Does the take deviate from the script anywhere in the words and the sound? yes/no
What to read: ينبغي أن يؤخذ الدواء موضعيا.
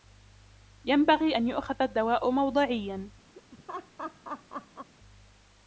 yes